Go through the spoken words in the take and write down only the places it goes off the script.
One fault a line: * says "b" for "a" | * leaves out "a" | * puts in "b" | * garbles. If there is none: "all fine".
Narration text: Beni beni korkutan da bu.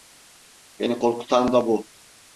* leaves out "beni"